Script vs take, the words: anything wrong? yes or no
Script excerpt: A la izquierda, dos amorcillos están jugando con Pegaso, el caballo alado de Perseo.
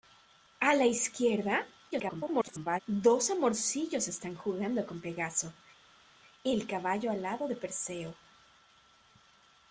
yes